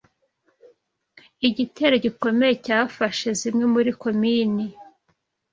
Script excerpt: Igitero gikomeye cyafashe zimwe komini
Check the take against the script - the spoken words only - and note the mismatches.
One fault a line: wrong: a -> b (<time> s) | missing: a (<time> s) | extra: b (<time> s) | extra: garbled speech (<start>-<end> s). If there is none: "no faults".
extra: muri (3.7 s)